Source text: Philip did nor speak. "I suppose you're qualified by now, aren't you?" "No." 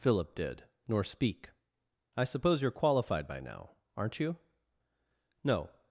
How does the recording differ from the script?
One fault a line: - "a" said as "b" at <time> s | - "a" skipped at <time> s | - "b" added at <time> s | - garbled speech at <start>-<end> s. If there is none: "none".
none